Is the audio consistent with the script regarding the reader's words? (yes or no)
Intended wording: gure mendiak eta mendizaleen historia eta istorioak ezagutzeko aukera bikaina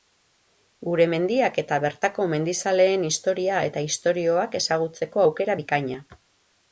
no